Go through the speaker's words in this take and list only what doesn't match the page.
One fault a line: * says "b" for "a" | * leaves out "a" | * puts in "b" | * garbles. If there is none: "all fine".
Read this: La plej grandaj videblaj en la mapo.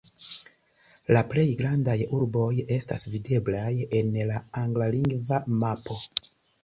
* puts in "urboj estas"
* puts in "anglalingva"